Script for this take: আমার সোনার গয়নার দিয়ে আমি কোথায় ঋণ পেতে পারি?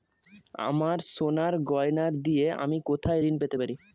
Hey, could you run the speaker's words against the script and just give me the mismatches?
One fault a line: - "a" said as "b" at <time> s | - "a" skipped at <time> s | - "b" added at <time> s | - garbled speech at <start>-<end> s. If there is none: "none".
none